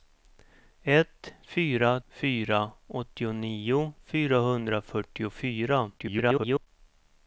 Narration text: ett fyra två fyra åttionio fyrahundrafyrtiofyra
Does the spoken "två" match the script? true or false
false